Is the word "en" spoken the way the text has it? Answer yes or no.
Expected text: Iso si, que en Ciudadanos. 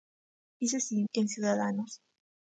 yes